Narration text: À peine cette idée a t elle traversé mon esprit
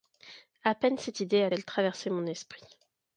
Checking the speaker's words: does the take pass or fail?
fail